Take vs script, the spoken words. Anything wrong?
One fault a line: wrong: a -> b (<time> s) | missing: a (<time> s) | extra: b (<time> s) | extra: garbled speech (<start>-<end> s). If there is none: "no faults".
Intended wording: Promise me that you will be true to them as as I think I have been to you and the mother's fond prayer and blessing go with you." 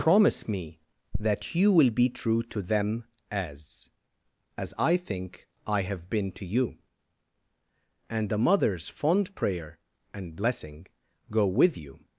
no faults